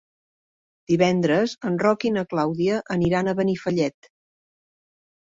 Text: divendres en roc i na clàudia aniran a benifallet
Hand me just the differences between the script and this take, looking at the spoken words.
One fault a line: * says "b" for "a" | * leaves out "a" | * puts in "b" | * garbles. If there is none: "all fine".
all fine